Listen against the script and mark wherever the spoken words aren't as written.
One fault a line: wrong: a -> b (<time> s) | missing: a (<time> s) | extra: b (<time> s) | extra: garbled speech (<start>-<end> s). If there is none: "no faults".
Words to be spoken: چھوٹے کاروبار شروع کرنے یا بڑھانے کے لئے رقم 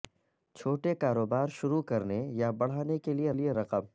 extra: لئے (3.3 s)